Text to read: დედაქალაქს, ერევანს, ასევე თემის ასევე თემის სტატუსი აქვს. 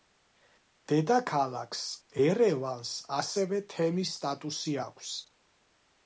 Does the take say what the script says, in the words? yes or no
no